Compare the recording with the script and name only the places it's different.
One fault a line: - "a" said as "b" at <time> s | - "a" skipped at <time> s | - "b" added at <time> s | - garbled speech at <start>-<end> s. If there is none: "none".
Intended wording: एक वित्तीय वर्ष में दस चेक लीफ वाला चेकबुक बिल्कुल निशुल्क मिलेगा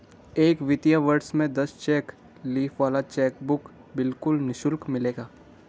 none